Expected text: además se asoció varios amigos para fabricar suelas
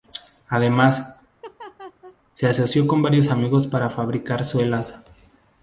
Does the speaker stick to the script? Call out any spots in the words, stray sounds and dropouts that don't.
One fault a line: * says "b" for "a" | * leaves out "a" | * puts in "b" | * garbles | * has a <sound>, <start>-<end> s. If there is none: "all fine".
* has a laugh, 1.4-2.2 s
* puts in "con"